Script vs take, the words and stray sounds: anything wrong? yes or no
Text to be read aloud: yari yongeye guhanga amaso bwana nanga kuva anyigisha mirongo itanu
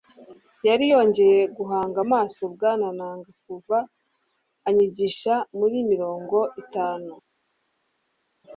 yes